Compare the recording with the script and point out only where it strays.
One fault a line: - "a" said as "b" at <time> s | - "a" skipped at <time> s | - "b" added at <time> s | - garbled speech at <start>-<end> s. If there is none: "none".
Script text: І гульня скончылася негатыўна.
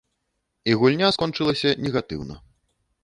none